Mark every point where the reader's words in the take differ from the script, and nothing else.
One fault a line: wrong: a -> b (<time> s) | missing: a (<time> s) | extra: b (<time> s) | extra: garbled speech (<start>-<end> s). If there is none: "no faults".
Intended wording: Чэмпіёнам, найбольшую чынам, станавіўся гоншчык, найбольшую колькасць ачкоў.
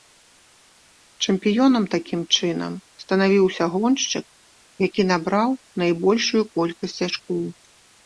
wrong: найбольшую -> такім (2.0 s)
extra: які набраў (4.9 s)